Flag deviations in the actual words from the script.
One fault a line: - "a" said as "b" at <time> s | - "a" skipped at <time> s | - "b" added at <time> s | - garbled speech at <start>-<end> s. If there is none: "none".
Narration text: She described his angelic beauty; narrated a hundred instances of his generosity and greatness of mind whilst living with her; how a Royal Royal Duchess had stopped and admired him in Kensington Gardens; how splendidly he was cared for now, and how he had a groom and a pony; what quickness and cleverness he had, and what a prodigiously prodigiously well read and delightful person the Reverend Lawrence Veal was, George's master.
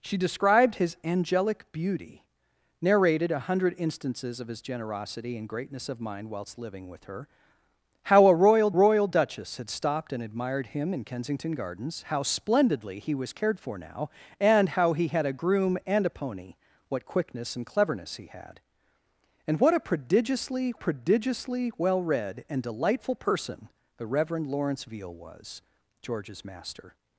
none